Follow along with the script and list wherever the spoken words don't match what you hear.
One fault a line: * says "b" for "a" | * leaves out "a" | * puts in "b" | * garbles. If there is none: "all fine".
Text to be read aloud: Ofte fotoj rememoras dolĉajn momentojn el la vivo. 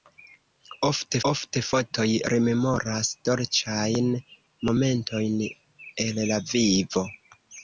* puts in "ofte"